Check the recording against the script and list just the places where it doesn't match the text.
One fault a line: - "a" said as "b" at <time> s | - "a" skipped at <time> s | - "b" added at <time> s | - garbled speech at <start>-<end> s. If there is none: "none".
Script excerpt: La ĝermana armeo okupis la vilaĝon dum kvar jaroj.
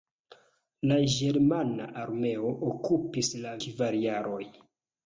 - "vilaĝon dum" skipped at 3.5 s